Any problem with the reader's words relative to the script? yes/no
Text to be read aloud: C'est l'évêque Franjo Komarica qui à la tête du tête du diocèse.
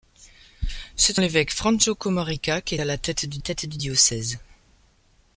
no